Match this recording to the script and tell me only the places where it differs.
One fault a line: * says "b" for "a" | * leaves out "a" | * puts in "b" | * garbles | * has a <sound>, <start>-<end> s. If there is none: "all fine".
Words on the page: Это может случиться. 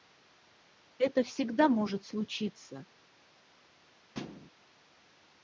* puts in "всегда"
* has a thud, 4.1-4.5 s